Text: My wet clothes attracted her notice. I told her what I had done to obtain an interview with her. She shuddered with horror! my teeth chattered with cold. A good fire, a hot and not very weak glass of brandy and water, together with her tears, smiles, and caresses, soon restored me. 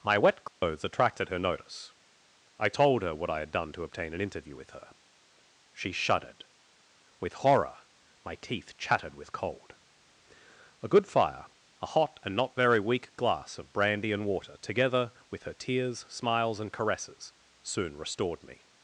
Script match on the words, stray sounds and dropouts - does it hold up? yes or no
no